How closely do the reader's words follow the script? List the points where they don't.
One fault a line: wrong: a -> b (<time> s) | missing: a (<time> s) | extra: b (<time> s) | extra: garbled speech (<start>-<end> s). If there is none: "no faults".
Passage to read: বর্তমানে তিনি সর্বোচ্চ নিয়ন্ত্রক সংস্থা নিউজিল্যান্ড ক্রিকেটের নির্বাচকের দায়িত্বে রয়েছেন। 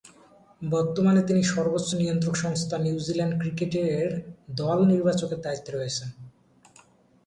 extra: দল (4.5 s)